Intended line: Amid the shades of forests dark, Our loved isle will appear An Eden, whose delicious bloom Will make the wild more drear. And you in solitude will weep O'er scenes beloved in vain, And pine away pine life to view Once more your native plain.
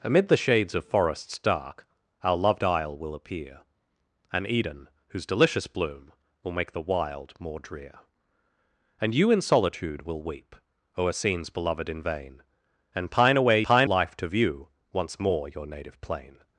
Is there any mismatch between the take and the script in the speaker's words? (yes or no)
no